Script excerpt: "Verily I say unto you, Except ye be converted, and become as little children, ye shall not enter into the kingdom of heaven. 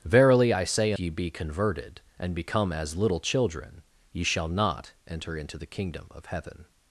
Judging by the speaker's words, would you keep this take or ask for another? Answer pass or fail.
fail